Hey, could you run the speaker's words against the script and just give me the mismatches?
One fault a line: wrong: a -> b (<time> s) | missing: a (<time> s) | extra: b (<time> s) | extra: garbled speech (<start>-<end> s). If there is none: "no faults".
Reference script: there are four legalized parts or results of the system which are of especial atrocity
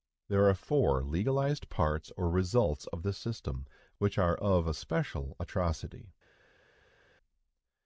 no faults